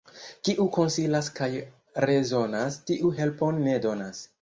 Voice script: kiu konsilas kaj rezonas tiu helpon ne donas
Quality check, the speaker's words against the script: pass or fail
pass